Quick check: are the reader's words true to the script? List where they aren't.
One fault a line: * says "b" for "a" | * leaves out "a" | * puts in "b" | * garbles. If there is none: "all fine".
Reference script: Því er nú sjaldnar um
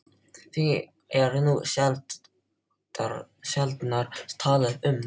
* puts in "talað"